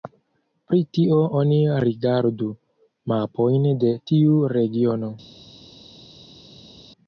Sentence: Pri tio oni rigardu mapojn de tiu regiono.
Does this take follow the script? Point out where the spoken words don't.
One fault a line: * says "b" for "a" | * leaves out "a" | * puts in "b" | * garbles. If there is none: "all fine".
all fine